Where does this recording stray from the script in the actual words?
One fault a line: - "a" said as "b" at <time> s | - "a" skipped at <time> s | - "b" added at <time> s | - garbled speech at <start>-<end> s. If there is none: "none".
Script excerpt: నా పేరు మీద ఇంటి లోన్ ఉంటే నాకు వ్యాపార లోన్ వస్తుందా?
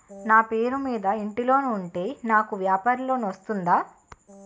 none